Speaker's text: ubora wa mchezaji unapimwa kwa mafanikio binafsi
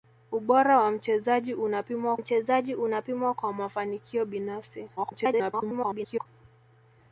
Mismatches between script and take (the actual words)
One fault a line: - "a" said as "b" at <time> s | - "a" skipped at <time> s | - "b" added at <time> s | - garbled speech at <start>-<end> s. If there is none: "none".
- "mchezaji unapimwa" added at 2.1 s
- garbled speech at 5.0-6.3 s